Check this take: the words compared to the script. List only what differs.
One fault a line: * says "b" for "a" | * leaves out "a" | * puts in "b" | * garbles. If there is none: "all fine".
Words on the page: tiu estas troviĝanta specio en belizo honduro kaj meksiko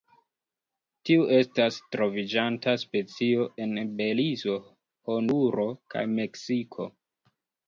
all fine